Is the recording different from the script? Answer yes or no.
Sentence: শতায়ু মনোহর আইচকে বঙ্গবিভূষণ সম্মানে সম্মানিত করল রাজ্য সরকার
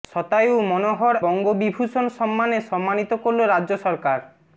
yes